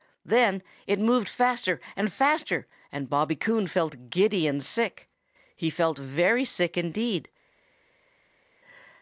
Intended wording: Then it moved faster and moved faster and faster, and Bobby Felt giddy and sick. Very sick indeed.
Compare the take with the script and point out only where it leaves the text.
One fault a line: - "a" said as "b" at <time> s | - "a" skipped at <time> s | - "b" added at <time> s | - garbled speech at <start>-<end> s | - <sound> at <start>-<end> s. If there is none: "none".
- "moved" skipped at 2.1 s
- "faster and Bobby" said as "Bobby Coon" at 3.1 s
- "He felt" added at 5.6 s